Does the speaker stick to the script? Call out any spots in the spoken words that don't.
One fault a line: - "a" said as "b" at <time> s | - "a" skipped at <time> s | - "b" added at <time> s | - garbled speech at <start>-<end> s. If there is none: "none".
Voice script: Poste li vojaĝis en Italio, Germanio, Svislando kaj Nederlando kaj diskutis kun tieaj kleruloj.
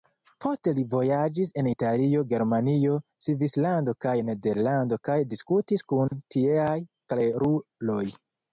none